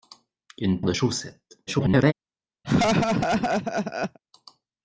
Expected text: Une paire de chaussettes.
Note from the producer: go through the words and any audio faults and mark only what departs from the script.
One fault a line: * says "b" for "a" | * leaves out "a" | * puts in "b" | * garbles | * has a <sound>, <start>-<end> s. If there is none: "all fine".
* leaves out "paire"
* garbles
* has a laugh, 2.6-4.2 s